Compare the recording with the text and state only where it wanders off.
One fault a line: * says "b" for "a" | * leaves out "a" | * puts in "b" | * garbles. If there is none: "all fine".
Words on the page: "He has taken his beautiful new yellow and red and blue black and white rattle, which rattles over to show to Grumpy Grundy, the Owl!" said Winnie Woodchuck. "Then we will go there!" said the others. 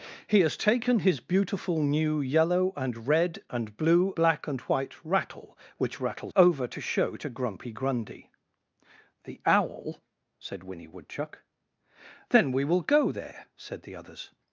all fine